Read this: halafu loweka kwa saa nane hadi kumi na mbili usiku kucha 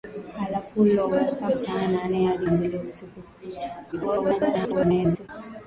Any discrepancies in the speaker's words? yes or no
yes